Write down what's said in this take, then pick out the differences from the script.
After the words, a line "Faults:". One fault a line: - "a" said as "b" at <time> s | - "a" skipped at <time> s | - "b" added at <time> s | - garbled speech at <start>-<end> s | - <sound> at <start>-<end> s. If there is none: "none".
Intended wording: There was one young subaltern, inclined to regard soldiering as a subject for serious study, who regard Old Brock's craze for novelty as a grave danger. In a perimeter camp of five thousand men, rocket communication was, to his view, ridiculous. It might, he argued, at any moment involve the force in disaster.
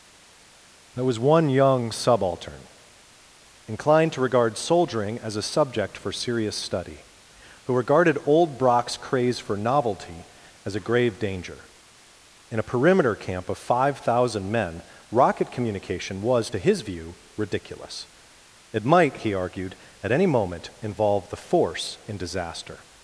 There was one young subaltern, inclined to regard soldiering as a subject for serious study, who regarded Old Brock's craze for novelty as a grave danger. In a perimeter camp of five thousand men, rocket communication was, to his view, ridiculous. It might, he argued, at any moment involve the force in disaster.
Faults:
- "regard" said as "regarded" at 7.7 s